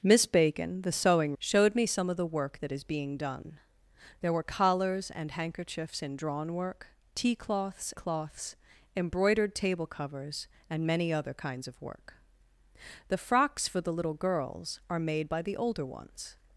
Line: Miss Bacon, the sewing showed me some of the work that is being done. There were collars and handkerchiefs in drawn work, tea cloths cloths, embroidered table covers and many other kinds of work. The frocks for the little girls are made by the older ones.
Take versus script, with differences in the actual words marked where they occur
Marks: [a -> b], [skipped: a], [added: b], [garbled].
Miss Bacon, the sewing showed me some of the work that is being done. There were collars and handkerchiefs in drawn work, tea cloths cloths, embroidered table covers and many other kinds of work. The frocks for the little girls are made by the older ones.